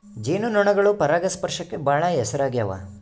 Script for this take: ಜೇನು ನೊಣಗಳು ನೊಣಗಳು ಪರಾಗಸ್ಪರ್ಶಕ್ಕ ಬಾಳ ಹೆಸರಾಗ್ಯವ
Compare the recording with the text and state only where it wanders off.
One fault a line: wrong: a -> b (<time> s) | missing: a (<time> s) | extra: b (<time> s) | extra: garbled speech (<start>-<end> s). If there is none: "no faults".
missing: ನೊಣಗಳು (0.9 s)